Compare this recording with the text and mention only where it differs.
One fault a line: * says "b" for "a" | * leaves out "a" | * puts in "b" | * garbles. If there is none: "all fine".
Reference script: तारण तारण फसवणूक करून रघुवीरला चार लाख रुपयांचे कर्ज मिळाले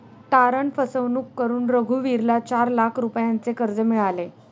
* leaves out "तारण"